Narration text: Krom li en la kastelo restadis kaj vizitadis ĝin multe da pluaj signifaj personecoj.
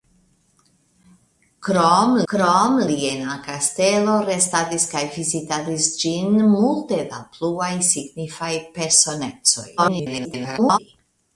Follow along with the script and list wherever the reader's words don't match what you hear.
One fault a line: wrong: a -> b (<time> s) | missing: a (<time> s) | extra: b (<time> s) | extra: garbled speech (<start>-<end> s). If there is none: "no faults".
extra: krom (2.3 s)
extra: garbled speech (9.8-10.8 s)